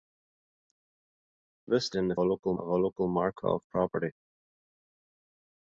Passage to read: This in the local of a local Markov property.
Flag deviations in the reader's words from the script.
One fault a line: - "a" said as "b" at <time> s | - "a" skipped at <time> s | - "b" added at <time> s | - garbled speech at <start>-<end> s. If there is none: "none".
none